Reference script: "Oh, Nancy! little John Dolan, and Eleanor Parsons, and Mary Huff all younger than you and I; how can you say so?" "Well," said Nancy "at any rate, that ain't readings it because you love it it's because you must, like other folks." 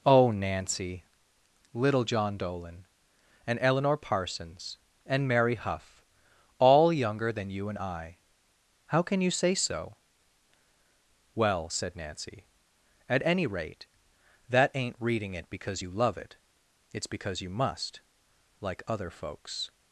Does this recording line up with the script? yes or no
no